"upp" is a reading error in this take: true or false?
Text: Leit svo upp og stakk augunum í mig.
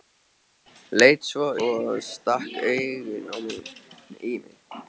true